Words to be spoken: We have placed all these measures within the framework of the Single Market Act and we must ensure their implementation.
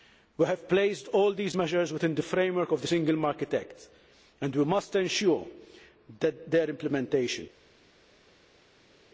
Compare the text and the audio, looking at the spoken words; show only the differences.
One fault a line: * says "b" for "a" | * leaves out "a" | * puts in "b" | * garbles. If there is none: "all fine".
all fine